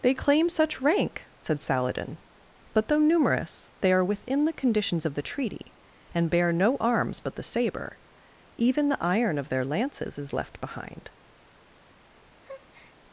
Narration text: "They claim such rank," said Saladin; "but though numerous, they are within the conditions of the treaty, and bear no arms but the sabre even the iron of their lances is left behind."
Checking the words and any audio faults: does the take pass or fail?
fail